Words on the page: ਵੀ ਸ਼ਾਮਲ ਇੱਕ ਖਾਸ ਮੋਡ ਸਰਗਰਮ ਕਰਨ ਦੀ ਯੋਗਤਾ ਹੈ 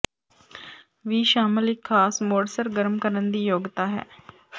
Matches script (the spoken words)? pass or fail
pass